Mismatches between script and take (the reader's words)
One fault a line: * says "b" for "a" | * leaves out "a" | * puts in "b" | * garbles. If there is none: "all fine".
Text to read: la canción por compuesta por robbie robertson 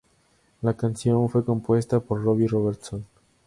* says "fue" for "por"